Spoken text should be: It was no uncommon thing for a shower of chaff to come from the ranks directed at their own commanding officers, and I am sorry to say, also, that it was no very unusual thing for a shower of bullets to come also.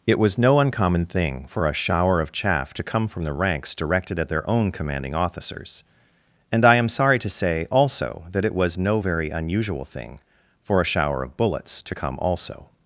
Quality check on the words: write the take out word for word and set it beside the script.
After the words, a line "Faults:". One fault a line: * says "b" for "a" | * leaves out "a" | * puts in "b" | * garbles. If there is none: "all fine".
It was no uncommon thing for a shower of chaff to come from the ranks directed at their own commanding officers, and I am sorry to say, also, that it was no very unusual thing for a shower of bullets to come also.
Faults:
all fine